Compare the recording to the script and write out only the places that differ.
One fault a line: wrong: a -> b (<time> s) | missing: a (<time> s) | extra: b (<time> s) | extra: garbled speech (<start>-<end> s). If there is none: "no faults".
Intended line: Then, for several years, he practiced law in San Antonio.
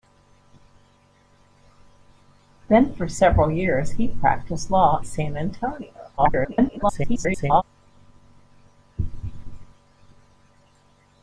missing: in (5.0 s)
extra: garbled speech (6.2-7.6 s)